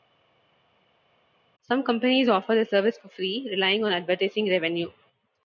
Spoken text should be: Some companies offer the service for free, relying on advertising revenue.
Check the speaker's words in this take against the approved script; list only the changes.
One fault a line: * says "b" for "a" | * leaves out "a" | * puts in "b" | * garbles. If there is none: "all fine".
all fine